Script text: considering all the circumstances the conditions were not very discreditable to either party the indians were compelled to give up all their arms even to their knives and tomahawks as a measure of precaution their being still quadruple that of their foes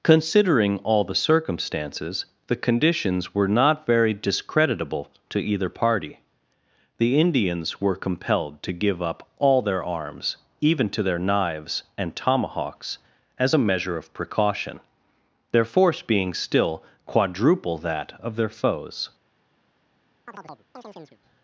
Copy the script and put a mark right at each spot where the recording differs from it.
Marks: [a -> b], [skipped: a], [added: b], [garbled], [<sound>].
considering all the circumstances the conditions were not very discreditable to either party the indians were compelled to give up all their arms even to their knives and tomahawks as a measure of precaution their [added: force] being still quadruple that of their foes [chirp]